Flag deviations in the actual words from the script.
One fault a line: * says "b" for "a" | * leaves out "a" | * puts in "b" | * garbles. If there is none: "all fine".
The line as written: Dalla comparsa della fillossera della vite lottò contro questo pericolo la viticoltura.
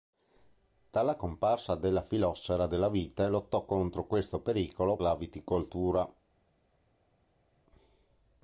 all fine